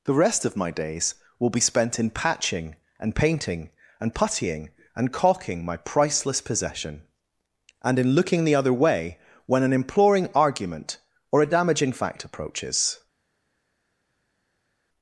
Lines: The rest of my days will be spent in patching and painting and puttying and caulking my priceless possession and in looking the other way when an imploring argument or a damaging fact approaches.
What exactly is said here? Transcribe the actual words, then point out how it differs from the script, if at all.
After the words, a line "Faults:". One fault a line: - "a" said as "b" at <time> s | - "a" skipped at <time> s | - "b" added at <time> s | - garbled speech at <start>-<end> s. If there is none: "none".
The rest of my days will be spent in patching and painting and puttying and caulking my priceless possession and in looking the other way when an imploring argument or a damaging fact approaches.
Faults:
none